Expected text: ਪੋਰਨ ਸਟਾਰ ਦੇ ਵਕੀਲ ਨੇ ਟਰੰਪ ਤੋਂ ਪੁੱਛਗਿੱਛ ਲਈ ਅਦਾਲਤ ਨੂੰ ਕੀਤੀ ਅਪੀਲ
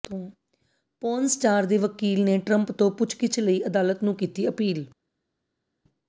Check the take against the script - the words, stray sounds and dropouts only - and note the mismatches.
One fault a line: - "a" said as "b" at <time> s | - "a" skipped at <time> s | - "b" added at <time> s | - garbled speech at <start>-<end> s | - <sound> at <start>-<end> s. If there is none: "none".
none